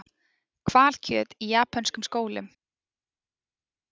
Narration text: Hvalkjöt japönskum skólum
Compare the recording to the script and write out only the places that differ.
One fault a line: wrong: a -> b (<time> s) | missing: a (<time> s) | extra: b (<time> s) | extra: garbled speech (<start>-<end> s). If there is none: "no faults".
extra: í (1.4 s)